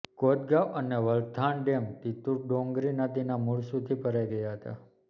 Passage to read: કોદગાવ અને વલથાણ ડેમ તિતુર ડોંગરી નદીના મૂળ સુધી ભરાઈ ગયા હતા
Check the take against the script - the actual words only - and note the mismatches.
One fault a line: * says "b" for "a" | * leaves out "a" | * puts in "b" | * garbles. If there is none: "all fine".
all fine